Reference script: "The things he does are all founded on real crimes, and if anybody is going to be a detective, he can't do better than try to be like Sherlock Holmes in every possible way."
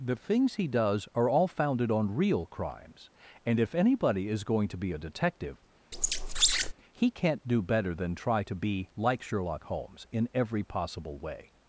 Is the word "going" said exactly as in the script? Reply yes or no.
yes